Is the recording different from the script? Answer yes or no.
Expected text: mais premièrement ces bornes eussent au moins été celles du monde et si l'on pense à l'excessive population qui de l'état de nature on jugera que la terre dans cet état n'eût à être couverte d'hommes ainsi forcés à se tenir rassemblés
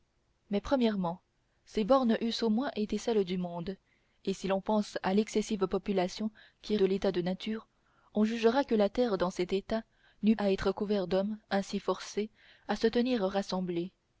no